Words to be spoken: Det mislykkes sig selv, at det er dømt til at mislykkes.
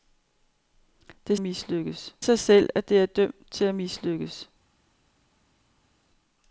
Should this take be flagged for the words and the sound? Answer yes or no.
no